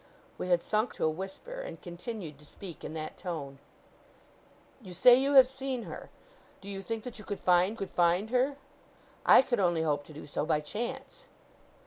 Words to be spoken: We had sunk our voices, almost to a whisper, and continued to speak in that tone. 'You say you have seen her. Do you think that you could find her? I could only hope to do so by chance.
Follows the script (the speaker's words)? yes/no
no